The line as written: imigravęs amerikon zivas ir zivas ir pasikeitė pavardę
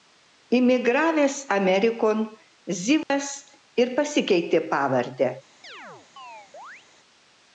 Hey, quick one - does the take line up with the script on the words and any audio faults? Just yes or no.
no